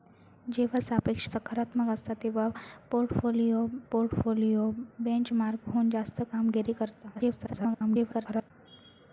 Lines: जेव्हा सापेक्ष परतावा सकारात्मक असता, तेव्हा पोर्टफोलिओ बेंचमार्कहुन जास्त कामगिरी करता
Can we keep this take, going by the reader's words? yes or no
no